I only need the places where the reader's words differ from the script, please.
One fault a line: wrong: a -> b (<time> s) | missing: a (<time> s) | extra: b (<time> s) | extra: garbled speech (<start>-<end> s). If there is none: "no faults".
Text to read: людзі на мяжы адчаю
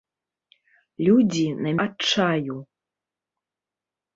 missing: мяжы (1.7 s)